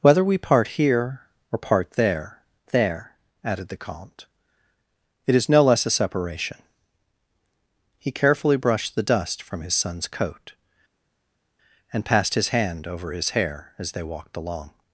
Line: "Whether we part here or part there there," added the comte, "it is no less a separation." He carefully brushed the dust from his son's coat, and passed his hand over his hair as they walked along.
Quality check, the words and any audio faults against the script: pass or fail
pass